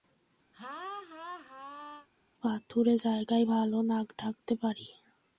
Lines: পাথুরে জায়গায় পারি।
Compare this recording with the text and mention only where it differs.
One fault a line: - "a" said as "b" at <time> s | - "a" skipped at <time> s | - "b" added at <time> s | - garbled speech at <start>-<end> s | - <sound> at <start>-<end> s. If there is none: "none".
- laugh at 0.5-2.1 s
- "ভালো নাক ডাকতে" added at 3.4 s